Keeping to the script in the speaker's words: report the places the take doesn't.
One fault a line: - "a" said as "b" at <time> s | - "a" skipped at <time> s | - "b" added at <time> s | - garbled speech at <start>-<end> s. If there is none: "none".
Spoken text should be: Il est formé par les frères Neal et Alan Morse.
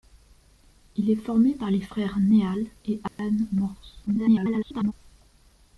- garbled speech at 4.1-4.9 s